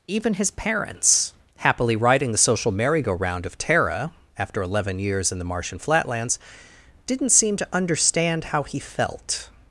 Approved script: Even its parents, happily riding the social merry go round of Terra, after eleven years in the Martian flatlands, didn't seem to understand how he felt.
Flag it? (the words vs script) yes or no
yes